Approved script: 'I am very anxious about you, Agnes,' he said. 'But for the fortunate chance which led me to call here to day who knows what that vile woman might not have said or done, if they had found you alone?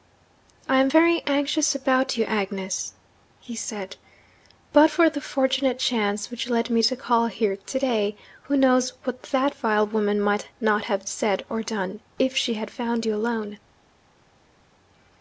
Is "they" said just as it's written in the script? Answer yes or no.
no